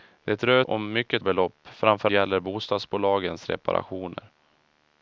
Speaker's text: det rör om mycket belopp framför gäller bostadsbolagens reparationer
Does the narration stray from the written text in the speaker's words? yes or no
no